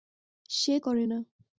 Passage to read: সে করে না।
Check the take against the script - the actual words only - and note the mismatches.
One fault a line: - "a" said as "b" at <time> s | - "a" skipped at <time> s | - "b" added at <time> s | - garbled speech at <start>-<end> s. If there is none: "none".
none